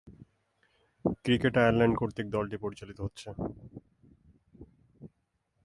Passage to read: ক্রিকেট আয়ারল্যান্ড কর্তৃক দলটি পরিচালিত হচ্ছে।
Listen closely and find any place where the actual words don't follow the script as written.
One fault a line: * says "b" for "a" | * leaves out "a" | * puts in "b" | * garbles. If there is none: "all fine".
all fine